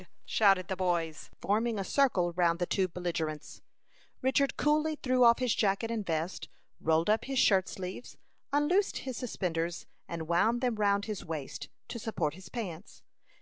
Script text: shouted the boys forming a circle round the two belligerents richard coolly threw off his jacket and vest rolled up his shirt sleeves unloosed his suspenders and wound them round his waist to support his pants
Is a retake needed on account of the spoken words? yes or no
no